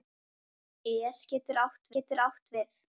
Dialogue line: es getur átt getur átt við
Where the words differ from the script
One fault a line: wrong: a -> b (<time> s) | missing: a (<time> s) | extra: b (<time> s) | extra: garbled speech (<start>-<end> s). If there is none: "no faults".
no faults